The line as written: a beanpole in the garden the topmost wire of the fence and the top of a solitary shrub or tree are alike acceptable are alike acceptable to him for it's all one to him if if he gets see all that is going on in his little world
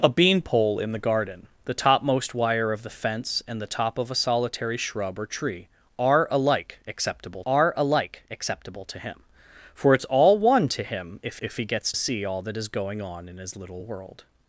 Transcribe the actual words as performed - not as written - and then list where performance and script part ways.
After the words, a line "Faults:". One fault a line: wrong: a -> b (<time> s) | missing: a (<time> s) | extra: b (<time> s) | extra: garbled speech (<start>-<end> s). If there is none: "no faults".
a beanpole in the garden the topmost wire of the fence and the top of a solitary shrub or tree are alike acceptable are alike acceptable to him for it's all one to him if if he gets see all that is going on in his little world
Faults:
no faults